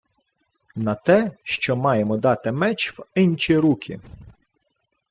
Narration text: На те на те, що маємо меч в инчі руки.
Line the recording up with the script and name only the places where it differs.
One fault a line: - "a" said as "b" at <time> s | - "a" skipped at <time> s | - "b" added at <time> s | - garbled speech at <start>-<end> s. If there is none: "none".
- "на те" skipped at 1.3 s
- "дати" added at 2.1 s